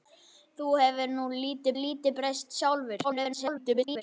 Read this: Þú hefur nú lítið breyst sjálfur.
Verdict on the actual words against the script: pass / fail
fail